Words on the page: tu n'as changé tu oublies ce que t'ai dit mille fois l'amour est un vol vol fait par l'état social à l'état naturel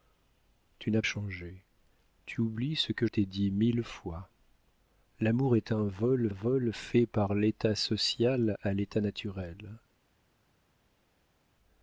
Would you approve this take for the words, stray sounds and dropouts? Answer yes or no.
yes